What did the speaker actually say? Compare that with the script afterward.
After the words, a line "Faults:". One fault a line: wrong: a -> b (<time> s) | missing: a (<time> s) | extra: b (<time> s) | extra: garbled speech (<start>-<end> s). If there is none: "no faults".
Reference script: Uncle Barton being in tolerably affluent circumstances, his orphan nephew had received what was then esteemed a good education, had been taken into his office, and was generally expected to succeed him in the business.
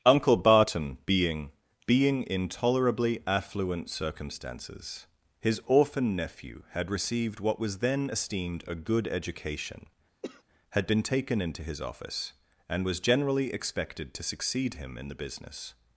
Uncle Barton being being in tolerably affluent circumstances, his orphan nephew had received what was then esteemed a good education, had been taken into his office, and was generally expected to succeed him in the business.
Faults:
extra: being (1.9 s)